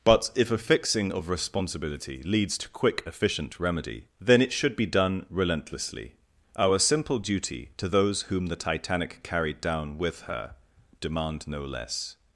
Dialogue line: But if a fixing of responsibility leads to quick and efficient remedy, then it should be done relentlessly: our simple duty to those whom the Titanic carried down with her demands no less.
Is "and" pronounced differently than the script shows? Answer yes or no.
yes